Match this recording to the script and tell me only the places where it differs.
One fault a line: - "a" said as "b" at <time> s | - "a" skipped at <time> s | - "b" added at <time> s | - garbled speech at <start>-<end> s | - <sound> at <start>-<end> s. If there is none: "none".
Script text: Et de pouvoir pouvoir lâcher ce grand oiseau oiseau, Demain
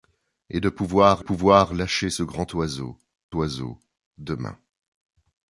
none